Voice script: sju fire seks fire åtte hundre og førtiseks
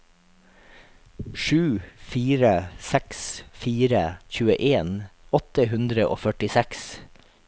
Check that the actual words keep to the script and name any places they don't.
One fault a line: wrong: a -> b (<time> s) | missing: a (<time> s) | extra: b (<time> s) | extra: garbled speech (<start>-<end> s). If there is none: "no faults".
extra: tjueen (4.4 s)